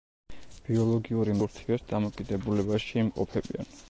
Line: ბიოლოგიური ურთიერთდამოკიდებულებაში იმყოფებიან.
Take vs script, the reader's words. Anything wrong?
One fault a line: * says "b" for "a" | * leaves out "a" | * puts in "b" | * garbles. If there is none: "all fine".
all fine